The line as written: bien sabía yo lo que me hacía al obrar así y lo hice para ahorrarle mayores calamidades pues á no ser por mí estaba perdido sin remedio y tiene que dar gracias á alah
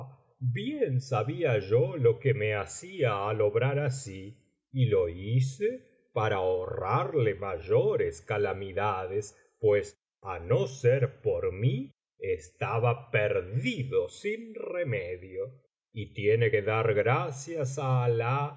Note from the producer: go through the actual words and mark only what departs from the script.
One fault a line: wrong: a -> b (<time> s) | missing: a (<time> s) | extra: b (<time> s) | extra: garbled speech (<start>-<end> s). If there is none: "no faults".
no faults